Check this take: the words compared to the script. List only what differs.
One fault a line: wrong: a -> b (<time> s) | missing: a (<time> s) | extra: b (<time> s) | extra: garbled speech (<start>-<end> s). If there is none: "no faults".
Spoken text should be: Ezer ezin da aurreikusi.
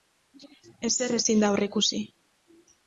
no faults